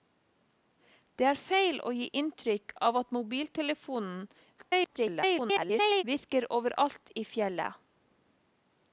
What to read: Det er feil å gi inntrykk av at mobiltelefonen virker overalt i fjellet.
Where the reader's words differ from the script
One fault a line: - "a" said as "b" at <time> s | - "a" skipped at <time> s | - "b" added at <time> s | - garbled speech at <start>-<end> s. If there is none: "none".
- garbled speech at 4.6-6.0 s